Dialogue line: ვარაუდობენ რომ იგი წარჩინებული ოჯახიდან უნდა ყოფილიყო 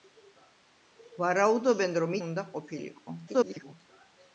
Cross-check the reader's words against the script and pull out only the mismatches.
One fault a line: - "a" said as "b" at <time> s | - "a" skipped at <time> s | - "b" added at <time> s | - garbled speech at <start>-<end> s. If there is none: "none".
- "იგი წარჩინებული ოჯახიდან" skipped at 2.2 s
- garbled speech at 3.3-3.7 s